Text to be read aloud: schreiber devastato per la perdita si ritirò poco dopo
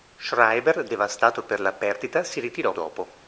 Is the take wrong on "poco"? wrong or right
wrong